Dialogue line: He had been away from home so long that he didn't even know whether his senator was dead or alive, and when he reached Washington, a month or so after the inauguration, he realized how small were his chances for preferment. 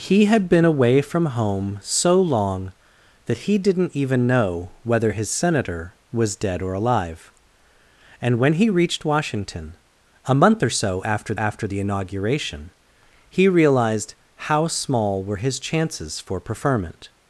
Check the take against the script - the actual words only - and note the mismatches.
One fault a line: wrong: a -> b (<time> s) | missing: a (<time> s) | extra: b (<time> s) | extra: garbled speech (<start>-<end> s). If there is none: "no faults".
extra: after (11.4 s)